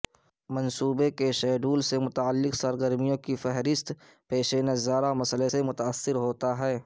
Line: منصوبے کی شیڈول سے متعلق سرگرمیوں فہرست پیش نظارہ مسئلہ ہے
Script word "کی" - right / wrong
wrong